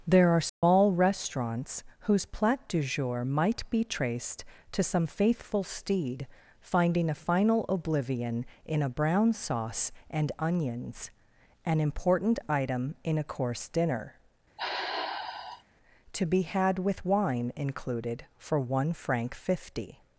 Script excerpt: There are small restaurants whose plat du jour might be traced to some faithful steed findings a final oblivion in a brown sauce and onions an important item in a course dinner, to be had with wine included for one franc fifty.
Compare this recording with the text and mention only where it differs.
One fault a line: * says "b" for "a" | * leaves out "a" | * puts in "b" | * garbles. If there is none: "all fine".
* says "finding" for "findings"